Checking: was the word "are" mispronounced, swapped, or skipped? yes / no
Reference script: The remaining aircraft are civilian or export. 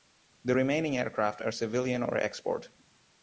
no